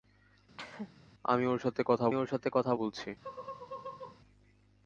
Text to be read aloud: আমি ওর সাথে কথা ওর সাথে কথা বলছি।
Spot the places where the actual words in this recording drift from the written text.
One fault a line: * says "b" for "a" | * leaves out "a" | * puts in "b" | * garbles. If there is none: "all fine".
all fine